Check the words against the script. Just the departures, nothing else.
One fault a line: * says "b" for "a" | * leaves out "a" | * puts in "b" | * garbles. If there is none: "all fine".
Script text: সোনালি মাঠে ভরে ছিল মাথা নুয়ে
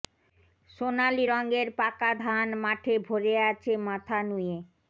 * puts in "রঙের পাকা ধান"
* says "আছে" for "ছিল"